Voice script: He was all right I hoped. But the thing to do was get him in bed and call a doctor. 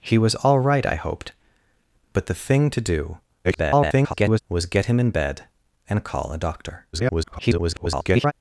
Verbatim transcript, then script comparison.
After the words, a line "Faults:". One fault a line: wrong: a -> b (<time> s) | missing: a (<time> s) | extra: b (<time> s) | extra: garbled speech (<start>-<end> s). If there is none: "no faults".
He was all right I hoped. But the thing to do [garbled] was get him in bed and call a doctor. [garbled]
Faults:
extra: garbled speech (3.4-4.4 s)
extra: garbled speech (6.9-8.3 s)